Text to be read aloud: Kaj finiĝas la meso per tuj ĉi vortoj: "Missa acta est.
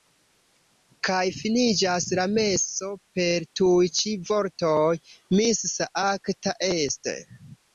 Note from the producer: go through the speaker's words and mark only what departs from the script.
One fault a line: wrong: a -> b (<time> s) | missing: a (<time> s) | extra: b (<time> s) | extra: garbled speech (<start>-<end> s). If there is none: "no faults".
no faults